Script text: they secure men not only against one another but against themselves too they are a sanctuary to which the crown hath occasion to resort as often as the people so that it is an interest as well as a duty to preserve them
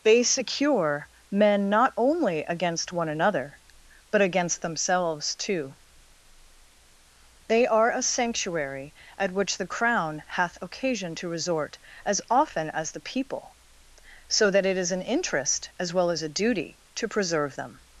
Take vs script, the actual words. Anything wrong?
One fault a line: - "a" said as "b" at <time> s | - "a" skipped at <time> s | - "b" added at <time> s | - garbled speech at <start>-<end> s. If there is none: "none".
- "to" said as "at" at 9.2 s